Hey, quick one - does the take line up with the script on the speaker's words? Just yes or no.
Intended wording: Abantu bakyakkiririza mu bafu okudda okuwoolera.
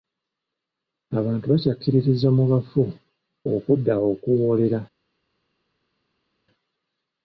yes